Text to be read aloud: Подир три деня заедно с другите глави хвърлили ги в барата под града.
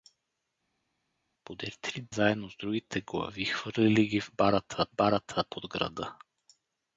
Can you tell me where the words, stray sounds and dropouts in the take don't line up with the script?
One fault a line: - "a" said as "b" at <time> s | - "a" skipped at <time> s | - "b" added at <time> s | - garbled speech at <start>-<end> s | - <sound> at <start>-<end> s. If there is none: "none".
- "деня" skipped at 2.1 s
- "барата" added at 4.9 s